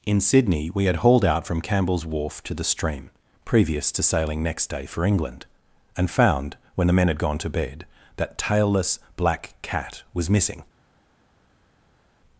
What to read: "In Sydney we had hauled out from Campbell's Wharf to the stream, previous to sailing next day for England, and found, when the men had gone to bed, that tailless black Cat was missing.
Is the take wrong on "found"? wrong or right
right